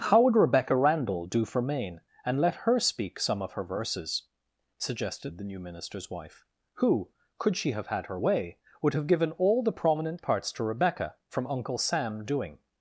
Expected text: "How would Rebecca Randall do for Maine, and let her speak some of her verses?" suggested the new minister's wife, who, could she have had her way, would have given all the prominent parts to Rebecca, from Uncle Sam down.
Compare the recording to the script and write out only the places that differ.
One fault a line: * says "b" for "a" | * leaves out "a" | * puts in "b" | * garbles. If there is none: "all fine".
* says "doing" for "down"